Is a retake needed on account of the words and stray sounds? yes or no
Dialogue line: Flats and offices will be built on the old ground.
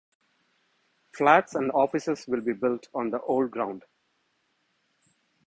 no